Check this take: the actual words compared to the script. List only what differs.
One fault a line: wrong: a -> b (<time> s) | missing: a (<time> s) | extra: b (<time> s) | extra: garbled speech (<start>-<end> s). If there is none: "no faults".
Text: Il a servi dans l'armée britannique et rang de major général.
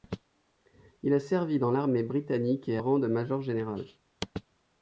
no faults